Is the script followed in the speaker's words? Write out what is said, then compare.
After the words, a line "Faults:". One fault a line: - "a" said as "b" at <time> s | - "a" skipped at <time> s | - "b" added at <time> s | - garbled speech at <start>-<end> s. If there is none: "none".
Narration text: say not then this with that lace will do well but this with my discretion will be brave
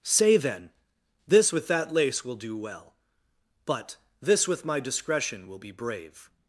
say then this with that lace will do well but this with my discretion will be brave
Faults:
- "not" skipped at 0.4 s